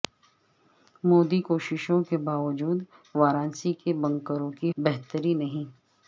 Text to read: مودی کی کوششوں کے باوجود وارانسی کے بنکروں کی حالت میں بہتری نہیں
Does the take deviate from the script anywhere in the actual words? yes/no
yes